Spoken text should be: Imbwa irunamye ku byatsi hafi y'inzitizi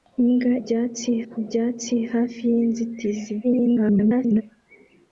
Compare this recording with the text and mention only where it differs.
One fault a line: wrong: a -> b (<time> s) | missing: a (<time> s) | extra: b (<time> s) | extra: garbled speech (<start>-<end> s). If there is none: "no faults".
wrong: irunamye -> byatsi (0.6 s)
extra: garbled speech (3.4-4.4 s)